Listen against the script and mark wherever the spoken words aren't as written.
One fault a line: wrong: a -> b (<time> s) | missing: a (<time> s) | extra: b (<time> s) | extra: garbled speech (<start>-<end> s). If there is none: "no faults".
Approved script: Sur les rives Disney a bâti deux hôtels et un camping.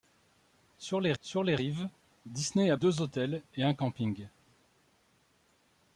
extra: sur les (1.2 s)
missing: bâti (2.8 s)